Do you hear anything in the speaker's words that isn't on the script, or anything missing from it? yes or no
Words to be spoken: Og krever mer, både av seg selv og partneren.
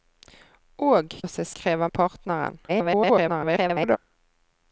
yes